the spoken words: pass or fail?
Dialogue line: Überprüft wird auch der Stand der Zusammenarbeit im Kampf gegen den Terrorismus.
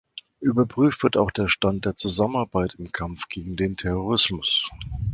pass